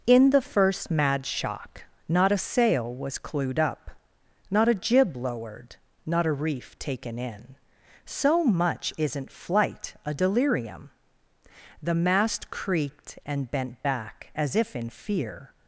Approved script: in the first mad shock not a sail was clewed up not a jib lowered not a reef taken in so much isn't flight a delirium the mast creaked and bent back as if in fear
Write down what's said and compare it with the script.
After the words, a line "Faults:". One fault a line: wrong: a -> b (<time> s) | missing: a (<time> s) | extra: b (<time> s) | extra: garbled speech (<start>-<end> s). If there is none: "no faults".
in the first mad shock not a sail was clewed up not a jib lowered not a reef taken in so much isn't flight a delirium the mast creaked and bent back as if in fear
Faults:
no faults